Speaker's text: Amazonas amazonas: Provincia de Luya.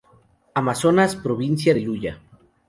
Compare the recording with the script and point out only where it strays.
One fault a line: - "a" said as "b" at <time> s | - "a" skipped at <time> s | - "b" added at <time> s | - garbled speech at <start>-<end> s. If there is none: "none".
- "amazonas" skipped at 1.1 s